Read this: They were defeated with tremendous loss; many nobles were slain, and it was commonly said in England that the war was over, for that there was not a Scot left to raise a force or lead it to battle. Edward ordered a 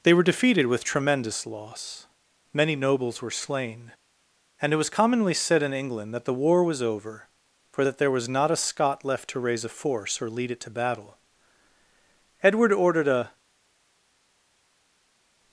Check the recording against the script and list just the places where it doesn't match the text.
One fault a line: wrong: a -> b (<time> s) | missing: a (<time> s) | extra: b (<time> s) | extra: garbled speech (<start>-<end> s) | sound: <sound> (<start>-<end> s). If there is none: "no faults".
no faults